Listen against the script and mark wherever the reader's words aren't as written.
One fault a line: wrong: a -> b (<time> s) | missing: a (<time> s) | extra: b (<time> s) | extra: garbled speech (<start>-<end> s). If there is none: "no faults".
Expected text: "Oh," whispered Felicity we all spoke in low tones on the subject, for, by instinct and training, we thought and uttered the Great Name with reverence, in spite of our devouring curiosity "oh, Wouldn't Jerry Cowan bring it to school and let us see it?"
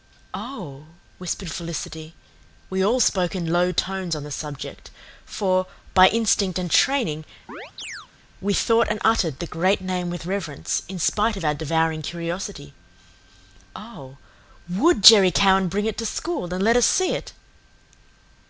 wrong: Wouldn't -> WOULD (14.7 s)